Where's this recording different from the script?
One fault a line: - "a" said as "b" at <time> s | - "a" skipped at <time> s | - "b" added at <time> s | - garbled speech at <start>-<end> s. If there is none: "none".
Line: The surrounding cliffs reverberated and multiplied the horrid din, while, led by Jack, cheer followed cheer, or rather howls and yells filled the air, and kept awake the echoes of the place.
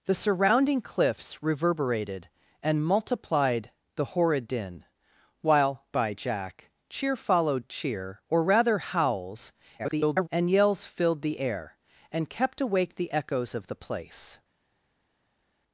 - "led" skipped at 5.8 s
- garbled speech at 9.8-10.3 s